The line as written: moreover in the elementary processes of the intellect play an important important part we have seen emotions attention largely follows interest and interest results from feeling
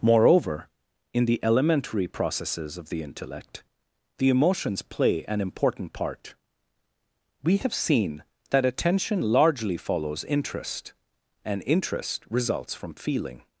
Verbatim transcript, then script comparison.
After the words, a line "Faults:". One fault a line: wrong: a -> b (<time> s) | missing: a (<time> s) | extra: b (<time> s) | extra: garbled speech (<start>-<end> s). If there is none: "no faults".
moreover in the elementary processes of the intellect the emotions play an important part we have seen that attention largely follows interest and interest results from feeling
Faults:
extra: the emotions (4.2 s)
missing: important (5.9 s)
wrong: emotions -> that (8.5 s)